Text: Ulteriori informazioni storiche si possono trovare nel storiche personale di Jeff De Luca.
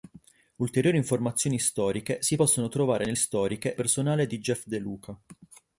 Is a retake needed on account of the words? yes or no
no